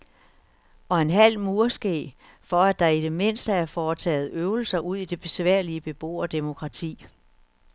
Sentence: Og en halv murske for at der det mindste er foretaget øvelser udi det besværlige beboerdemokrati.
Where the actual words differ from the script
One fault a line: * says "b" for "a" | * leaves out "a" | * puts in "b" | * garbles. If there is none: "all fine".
* puts in "i"